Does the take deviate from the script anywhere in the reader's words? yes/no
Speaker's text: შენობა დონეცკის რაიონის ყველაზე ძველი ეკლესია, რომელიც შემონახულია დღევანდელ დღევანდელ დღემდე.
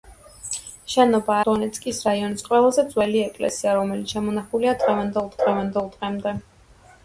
no